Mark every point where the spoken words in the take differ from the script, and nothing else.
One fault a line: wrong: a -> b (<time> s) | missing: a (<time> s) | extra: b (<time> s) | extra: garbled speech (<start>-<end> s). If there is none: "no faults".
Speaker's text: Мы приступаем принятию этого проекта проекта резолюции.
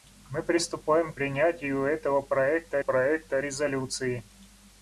no faults